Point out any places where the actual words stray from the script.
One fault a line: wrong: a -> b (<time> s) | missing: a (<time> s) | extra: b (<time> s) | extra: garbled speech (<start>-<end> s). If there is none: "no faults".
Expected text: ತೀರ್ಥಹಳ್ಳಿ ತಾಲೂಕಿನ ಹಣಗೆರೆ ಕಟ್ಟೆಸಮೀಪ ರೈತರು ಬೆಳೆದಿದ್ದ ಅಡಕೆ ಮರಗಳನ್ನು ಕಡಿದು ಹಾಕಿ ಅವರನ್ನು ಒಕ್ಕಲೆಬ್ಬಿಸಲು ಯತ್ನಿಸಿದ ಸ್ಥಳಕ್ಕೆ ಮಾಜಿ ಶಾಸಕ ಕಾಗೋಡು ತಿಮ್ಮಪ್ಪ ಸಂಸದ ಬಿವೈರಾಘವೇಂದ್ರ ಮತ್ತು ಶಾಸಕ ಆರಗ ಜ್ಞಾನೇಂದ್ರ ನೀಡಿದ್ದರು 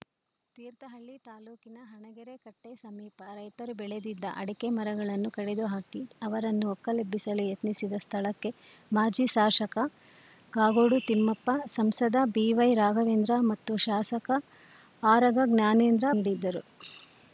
no faults